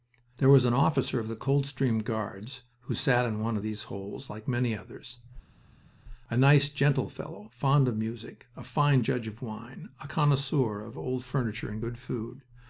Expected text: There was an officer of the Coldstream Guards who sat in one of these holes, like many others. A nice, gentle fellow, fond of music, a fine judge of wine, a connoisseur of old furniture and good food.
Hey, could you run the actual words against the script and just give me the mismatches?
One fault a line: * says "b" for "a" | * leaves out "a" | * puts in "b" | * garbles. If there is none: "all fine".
all fine